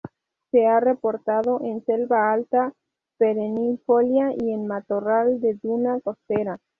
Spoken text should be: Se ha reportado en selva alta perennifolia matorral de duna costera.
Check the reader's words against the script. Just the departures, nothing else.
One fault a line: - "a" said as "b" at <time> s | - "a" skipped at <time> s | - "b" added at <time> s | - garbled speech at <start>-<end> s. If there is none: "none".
- "y en" added at 4.4 s